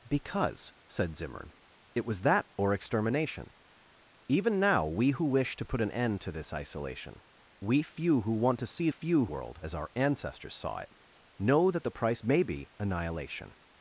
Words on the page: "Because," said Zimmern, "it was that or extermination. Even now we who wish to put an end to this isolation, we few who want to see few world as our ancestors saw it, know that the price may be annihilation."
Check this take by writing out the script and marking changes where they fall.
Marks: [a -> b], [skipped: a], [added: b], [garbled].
"Because," said Zimmern, "it was that or extermination. Even now we who wish to put an end to this isolation, we few who want to see few world as our ancestors saw it, know that the price may be annihilation."